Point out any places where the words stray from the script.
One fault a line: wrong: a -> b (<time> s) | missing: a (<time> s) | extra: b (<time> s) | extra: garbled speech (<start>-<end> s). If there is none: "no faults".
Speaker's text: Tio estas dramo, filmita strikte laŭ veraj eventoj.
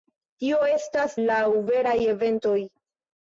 missing: dramo filmita strikte (1.2 s)